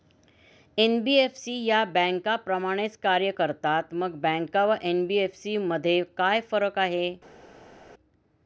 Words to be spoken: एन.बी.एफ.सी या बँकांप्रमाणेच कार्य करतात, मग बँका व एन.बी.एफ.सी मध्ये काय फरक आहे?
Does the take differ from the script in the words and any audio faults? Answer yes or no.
no